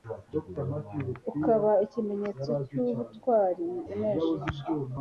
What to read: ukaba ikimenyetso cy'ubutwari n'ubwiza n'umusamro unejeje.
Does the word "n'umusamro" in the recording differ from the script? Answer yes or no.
yes